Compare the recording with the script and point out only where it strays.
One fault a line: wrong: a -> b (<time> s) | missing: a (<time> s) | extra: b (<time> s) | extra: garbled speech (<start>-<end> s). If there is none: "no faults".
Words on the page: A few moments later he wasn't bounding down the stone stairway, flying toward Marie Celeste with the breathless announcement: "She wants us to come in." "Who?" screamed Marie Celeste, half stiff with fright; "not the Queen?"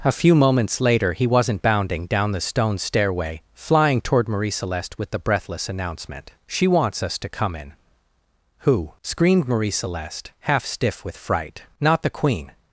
no faults